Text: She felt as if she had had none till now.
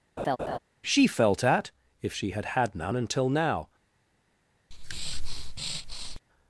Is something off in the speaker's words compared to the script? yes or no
yes